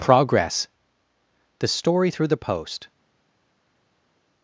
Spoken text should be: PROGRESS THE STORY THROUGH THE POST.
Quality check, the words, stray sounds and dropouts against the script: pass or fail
pass